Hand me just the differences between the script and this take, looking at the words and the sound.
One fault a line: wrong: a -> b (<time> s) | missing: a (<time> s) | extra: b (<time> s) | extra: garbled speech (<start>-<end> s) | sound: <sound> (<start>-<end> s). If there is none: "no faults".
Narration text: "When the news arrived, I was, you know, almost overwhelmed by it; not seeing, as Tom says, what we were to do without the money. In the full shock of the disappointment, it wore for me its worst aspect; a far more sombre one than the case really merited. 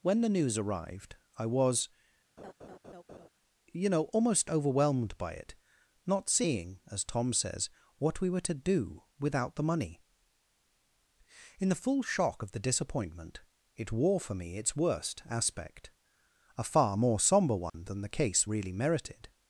sound: laugh (2.4-3.3 s)
sound: dropout (17.7-17.7 s)